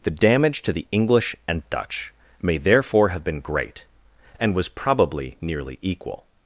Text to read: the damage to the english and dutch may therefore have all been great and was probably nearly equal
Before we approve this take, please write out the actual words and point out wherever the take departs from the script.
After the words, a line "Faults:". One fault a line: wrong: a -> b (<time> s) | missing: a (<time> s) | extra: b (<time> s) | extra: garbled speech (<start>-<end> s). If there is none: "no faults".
the damage to the english and dutch may therefore have been great and was probably nearly equal
Faults:
missing: all (3.2 s)